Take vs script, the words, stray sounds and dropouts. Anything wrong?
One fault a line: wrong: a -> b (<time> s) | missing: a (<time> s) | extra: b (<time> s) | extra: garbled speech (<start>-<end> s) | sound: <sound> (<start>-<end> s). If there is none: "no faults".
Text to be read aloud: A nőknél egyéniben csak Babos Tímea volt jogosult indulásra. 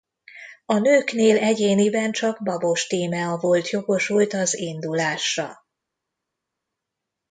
extra: az (4.3 s)